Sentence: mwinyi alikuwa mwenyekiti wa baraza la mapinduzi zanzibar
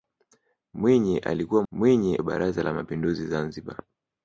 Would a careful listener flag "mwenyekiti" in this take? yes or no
yes